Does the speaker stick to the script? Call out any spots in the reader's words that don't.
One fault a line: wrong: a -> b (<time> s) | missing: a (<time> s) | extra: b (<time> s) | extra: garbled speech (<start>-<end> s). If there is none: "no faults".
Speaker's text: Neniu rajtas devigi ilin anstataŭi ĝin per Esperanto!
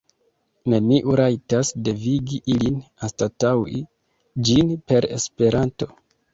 no faults